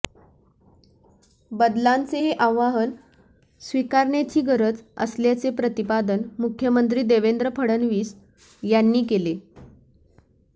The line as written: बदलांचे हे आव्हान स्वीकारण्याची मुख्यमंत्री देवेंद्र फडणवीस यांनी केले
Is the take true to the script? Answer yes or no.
no